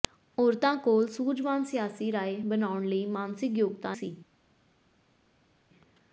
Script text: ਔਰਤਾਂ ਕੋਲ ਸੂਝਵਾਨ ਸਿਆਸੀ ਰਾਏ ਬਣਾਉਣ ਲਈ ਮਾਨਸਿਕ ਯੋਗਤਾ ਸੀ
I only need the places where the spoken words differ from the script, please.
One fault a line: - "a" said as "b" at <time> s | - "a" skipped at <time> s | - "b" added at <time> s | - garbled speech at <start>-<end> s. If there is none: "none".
none